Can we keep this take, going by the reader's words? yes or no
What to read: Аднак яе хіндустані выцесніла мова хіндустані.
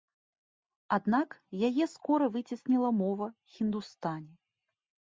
no